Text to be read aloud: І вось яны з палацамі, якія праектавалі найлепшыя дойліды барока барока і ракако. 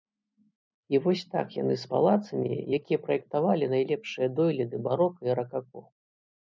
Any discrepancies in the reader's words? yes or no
yes